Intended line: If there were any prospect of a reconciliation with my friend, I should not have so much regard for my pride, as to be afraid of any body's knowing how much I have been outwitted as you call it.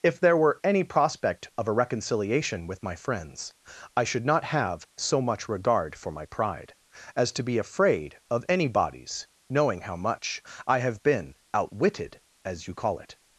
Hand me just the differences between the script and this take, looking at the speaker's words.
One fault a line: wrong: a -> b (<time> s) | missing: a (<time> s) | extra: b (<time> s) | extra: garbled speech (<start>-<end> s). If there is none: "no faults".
wrong: friend -> friends (3.0 s)